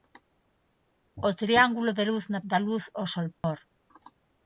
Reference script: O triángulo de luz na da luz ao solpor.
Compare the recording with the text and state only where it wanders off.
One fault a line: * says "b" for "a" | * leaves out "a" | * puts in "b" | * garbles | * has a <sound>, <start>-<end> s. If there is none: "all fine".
* has a dropout, 3.3-3.4 s